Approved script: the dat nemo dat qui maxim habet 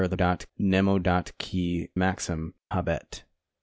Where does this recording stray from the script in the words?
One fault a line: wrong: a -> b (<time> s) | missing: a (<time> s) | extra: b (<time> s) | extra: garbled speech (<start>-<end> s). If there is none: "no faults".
no faults